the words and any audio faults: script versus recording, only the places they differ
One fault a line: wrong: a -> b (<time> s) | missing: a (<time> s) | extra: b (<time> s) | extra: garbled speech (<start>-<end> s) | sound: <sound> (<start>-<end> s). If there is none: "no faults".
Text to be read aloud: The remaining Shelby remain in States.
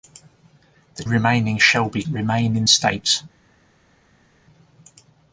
no faults